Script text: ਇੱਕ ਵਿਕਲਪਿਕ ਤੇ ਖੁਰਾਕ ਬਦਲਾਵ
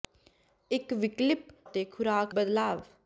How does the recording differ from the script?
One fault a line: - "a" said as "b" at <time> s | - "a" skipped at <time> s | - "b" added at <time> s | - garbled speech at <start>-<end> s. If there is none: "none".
none